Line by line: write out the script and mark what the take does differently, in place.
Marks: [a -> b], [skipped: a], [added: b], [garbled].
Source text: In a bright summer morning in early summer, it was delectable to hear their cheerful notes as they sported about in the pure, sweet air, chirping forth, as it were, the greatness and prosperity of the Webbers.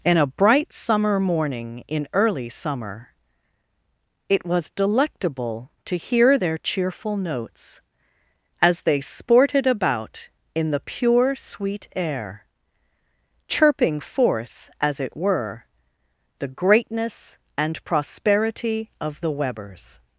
In a bright summer morning in early summer, it was delectable to hear their cheerful notes as they sported about in the pure, sweet air, chirping forth, as it were, the greatness and prosperity of the Webbers.